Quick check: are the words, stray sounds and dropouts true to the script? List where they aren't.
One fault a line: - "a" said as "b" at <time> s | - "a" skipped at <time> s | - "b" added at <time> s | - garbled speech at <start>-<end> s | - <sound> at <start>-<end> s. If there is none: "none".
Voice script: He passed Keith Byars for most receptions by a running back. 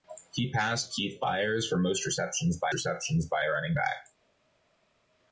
- "receptions by" added at 2.7 s